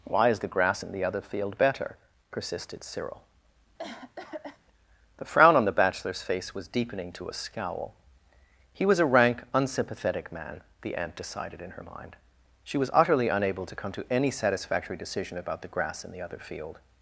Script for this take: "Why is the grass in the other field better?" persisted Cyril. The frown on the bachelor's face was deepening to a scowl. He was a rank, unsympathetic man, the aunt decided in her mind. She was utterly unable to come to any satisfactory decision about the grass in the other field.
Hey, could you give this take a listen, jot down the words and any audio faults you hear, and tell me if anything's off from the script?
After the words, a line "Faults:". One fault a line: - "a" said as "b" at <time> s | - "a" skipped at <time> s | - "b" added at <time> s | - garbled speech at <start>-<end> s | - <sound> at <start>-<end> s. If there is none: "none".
"Why is the grass in the other field better?" persisted Cyril. The frown on the bachelor's face was deepening to a scowl. He was a rank, unsympathetic man, the aunt decided in her mind. She was utterly unable to come to any satisfactory decision about the grass in the other field.
Faults:
- cough at 3.8-4.6 s